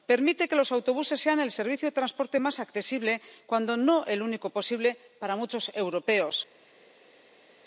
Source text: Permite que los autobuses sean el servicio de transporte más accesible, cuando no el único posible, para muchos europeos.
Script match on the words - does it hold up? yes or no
yes